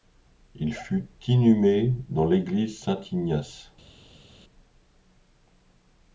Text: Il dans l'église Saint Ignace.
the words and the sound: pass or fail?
fail